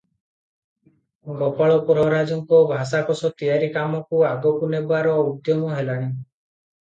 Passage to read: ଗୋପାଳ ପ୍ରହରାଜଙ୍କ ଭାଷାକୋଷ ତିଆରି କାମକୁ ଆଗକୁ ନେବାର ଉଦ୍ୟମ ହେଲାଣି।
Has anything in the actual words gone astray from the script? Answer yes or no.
no